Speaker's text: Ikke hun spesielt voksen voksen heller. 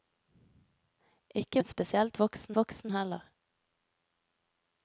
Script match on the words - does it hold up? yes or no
yes